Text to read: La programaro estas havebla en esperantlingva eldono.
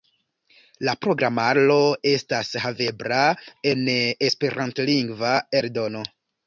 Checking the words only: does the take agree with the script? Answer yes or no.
yes